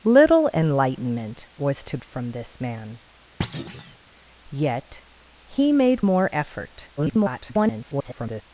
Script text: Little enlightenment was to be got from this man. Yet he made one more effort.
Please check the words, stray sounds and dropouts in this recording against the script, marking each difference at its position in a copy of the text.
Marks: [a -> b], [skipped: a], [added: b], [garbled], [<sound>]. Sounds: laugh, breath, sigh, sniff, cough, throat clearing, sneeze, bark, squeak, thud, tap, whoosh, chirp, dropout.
Little enlightenment was to [skipped: be got] from this man. [thud] Yet he made [skipped: one] more effort. [garbled]